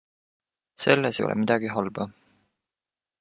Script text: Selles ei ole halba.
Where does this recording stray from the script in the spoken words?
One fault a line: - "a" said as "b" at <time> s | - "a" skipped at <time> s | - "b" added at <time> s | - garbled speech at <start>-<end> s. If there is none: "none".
- "midagi" added at 1.4 s